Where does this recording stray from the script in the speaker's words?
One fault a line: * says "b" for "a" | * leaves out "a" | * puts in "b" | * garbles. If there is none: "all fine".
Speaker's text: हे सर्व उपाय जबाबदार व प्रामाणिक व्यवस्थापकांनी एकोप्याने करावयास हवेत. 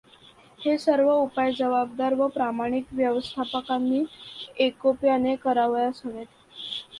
all fine